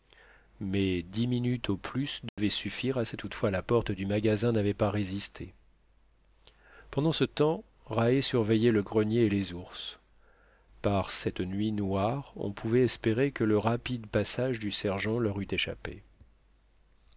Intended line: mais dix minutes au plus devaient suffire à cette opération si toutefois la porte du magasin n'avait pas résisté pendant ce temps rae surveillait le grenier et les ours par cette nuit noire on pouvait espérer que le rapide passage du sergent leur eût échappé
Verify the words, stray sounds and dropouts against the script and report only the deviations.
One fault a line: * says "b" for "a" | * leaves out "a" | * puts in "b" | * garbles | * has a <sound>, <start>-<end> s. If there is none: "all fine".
* has a dropout, 2.3-2.4 s
* leaves out "opération si"